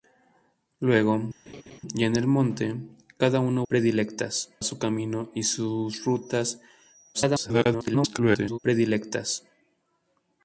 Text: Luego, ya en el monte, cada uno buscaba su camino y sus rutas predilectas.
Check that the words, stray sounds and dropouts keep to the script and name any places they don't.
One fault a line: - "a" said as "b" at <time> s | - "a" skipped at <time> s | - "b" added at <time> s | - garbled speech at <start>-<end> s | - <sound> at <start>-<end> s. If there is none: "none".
- laugh at 1.5-1.8 s
- "buscaba" said as "predilectas" at 3.7 s
- garbled speech at 7.1-8.6 s